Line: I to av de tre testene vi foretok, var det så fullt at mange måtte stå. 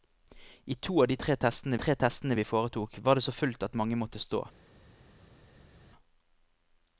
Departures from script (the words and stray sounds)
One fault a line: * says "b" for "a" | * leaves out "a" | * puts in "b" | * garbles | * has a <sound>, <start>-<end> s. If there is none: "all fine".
* puts in "tre testene"